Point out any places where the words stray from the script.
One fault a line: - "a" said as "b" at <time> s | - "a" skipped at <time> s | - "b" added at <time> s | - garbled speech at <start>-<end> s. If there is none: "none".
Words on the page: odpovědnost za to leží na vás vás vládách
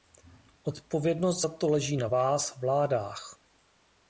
- "vás" skipped at 2.6 s